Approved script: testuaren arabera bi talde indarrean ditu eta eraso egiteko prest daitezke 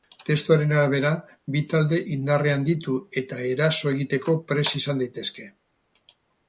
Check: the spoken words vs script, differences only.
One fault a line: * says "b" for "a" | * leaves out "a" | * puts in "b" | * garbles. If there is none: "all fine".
* puts in "izan"